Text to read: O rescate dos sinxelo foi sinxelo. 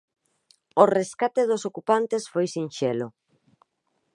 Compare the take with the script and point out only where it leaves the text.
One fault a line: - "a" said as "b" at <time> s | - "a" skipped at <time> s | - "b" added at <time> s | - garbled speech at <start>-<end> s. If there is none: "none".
- "sinxelo" said as "ocupantes" at 1.7 s